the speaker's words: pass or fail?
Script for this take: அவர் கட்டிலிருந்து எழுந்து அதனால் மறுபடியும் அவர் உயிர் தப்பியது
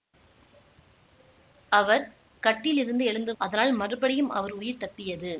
pass